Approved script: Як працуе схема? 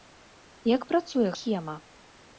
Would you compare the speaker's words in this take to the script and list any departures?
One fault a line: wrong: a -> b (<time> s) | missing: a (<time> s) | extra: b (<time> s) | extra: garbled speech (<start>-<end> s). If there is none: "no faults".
no faults